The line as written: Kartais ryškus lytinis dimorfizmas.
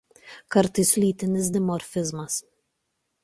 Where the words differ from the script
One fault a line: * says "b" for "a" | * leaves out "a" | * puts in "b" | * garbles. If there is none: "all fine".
* leaves out "ryškus"